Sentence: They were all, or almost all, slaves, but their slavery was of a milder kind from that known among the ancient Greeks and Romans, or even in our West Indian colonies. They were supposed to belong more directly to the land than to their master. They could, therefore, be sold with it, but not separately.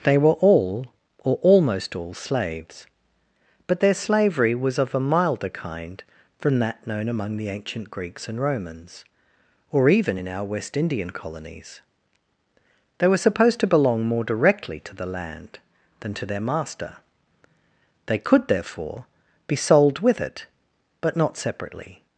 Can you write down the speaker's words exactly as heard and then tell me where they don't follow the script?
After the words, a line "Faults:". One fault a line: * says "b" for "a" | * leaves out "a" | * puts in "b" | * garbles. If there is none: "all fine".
They were all, or almost all, slaves, but their slavery was of a milder kind from that known among the ancient Greeks and Romans, or even in our West Indian colonies. They were supposed to belong more directly to the land than to their master. They could, therefore, be sold with it, but not separately.
Faults:
all fine